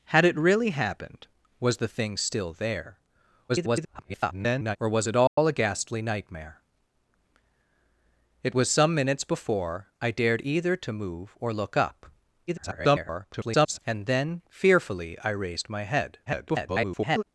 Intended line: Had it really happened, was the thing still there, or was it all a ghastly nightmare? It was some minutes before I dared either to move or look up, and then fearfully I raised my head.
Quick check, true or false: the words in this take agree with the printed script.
false